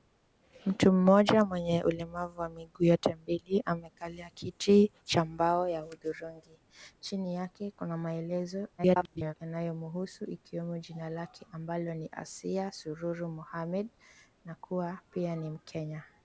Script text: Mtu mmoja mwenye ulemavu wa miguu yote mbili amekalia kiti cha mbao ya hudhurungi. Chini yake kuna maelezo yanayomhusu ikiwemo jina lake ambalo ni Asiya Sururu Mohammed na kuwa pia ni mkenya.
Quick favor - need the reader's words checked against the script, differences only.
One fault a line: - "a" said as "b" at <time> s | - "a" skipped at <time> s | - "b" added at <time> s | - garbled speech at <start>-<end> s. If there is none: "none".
- garbled speech at 8.8-9.3 s